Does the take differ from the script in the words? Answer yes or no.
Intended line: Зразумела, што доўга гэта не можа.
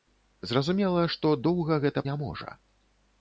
no